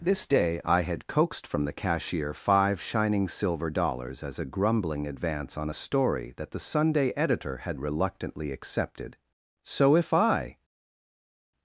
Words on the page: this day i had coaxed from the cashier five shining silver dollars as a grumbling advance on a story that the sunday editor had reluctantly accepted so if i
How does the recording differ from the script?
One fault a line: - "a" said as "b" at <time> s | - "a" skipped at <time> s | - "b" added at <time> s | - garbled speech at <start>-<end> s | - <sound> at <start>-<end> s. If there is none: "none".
none